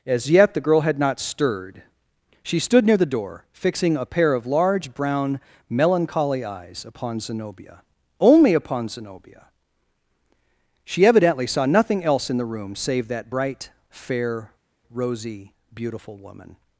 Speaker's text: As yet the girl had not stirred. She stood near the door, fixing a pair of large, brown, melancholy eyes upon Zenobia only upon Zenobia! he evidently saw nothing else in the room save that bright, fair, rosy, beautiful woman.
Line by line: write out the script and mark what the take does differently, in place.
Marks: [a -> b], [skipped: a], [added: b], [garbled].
As yet the girl had not stirred. She stood near the door, fixing a pair of large, brown, melancholy eyes upon Zenobia only upon Zenobia! [he -> she] evidently saw nothing else in the room save that bright, fair, rosy, beautiful woman.